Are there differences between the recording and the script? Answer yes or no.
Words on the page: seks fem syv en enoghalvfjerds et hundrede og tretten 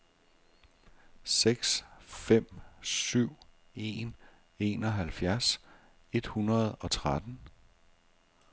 no